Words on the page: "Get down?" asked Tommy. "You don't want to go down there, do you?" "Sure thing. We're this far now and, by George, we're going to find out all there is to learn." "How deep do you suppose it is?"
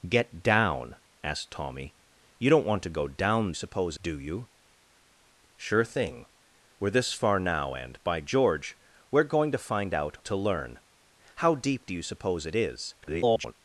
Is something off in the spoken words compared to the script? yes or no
yes